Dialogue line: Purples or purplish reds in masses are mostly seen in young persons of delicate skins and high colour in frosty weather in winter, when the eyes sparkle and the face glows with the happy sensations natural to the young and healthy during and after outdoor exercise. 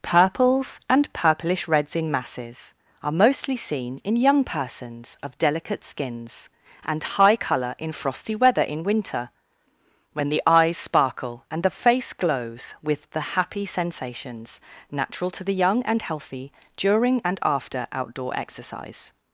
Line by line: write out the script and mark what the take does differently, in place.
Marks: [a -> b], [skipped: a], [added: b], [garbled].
Purples [or -> and] purplish reds in masses are mostly seen in young persons of delicate skins and high colour in frosty weather in winter, when the eyes sparkle and the face glows with the happy sensations natural to the young and healthy during and after outdoor exercise.